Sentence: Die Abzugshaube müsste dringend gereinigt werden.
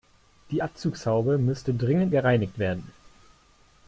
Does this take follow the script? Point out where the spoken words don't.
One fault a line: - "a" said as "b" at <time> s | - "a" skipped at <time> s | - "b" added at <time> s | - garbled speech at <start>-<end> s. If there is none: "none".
none